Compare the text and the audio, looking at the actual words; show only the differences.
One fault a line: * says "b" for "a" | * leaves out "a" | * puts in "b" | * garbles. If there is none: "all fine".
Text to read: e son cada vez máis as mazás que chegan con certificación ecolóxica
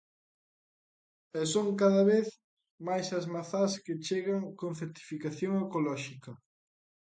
all fine